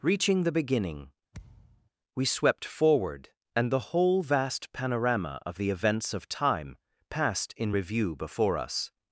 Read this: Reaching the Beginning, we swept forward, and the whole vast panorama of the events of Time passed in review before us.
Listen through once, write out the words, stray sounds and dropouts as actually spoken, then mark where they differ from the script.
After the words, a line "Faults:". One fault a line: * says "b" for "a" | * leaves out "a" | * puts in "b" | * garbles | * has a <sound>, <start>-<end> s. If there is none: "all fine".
Reaching the Beginning, we swept forward, and the whole vast panorama of the events of Time passed in review before us.
Faults:
* has a thud, 1.3-1.9 s